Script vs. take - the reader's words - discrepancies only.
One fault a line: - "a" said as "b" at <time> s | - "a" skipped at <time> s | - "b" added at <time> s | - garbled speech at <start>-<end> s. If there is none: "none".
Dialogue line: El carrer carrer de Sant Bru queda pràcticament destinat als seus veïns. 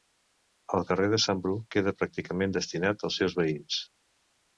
- "carrer" skipped at 1.1 s